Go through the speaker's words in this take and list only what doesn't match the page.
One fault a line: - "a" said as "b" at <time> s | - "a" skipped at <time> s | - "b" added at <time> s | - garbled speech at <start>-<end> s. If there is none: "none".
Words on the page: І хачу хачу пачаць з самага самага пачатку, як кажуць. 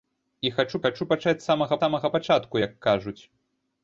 none